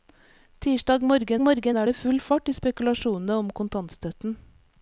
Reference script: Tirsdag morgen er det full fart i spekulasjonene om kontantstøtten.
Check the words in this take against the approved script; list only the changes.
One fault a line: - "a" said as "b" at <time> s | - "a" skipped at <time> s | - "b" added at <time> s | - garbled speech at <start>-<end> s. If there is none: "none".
- "morgen" added at 1.4 s